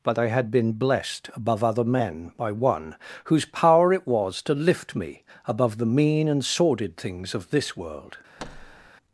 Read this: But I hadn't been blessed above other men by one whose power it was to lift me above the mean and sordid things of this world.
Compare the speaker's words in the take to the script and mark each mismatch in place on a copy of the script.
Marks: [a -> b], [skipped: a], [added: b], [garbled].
But I [hadn't -> had] been blessed above other men by one whose power it was to lift me above the mean and sordid things of this world.